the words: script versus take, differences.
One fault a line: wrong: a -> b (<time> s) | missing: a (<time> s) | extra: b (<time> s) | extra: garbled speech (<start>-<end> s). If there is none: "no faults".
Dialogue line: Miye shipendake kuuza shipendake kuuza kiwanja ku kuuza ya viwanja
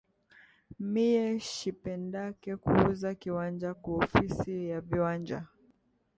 missing: shipendake kuuza (3.1 s)
wrong: kuuza -> ofisi (4.0 s)